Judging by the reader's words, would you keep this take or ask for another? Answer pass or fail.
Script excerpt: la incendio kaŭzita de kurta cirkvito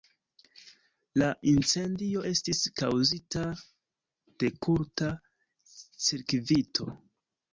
fail